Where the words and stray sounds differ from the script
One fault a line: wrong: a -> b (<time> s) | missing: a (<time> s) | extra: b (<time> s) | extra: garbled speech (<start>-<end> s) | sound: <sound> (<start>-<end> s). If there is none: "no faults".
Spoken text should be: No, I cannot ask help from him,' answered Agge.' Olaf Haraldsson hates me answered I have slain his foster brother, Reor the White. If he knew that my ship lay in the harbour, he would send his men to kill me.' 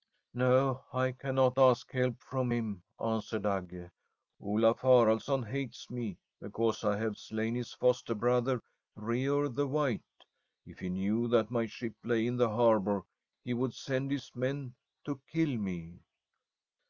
wrong: answered -> because (6.4 s)